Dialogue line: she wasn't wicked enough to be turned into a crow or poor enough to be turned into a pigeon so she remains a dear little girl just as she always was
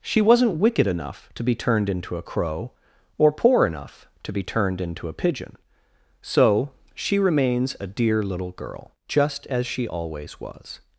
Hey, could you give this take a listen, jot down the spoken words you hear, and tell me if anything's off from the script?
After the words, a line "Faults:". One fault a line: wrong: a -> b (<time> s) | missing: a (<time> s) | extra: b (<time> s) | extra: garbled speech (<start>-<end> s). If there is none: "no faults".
she wasn't wicked enough to be turned into a crow or poor enough to be turned into a pigeon so she remains a dear little girl just as she always was
Faults:
no faults